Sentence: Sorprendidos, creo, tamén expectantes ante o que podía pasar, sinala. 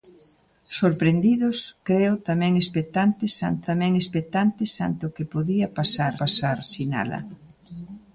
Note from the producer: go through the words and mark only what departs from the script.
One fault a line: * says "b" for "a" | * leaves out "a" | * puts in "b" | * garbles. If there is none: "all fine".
* puts in "tamén expectantes ante"
* puts in "pasar"